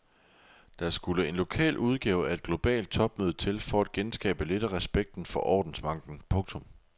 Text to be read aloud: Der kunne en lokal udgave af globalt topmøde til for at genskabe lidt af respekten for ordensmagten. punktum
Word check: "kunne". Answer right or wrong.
wrong